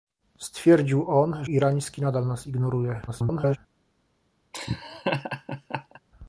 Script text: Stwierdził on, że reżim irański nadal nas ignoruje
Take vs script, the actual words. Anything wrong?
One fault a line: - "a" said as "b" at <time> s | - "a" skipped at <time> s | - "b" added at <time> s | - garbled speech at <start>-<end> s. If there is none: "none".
- "że reżim" skipped at 1.4 s
- garbled speech at 3.1-3.6 s